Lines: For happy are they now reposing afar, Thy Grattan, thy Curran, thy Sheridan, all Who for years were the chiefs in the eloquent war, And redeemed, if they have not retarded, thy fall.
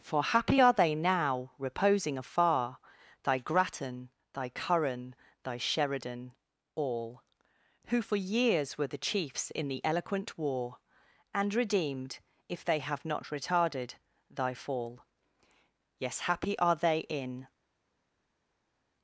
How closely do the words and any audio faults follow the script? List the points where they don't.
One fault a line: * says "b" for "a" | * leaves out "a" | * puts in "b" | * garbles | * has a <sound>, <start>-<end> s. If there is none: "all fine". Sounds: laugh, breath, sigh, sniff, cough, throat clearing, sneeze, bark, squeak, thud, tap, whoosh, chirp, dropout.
* puts in "Yes happy are they in"